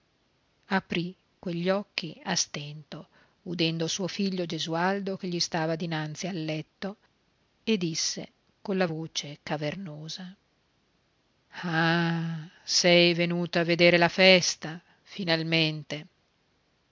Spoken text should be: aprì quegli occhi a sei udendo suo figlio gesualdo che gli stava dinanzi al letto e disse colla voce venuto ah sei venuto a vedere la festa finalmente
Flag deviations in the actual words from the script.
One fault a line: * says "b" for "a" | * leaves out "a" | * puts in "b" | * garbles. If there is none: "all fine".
* says "stento" for "sei"
* says "cavernosa" for "venuto"